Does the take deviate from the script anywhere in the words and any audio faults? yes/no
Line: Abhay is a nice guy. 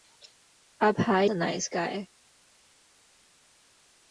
yes